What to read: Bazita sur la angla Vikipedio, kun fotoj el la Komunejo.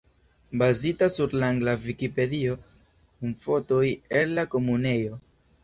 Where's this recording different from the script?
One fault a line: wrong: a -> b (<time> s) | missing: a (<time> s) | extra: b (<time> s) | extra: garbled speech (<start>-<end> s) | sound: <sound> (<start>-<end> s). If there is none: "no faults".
no faults